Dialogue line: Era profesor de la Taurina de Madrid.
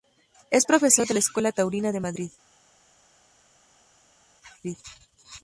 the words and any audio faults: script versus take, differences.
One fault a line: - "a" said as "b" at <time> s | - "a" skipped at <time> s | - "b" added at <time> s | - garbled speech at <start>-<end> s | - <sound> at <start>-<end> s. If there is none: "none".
- "Era" said as "Es" at 0.5 s
- "Escuela" added at 1.2 s